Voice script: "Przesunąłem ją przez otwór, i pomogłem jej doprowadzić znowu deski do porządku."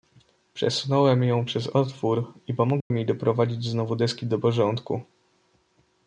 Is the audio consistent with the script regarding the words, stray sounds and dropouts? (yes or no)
no